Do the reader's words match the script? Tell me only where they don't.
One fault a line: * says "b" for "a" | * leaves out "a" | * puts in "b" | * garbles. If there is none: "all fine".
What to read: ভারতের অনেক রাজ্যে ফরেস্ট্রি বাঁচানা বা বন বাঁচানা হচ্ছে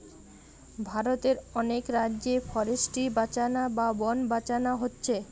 all fine